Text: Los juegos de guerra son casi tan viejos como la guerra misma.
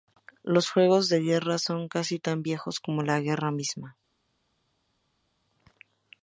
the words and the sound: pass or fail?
pass